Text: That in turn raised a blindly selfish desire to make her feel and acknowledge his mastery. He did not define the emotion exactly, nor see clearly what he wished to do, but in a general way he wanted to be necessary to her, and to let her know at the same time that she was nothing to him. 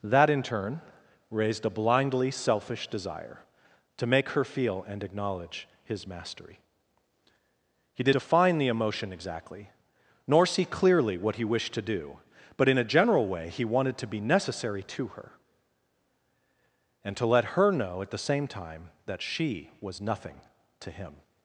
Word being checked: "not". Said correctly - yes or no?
no